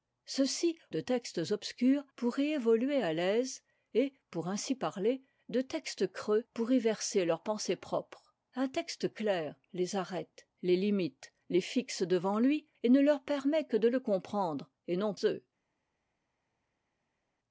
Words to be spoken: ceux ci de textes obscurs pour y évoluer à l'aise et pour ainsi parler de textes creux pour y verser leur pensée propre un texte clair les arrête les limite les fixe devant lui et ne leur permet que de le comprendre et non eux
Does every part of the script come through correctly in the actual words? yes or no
yes